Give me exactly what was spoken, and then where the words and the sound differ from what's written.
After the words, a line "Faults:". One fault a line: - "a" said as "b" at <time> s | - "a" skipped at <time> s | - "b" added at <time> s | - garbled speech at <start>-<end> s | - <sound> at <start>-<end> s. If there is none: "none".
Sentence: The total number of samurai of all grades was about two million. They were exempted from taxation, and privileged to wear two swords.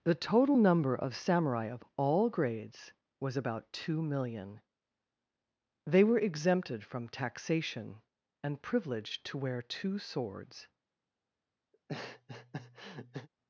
The total number of samurai of all grades was about two million. They were exempted from taxation, and privileged to wear two swords.
Faults:
- laugh at 11.7-13.3 s